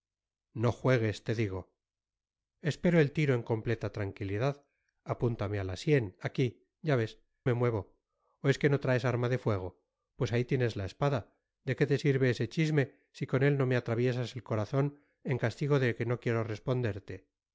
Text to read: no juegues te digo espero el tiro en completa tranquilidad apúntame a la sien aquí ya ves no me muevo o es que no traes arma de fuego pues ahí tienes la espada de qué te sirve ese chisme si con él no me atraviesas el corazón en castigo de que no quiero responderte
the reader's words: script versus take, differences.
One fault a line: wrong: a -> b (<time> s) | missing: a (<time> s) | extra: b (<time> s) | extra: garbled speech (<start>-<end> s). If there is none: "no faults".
missing: no (7.2 s)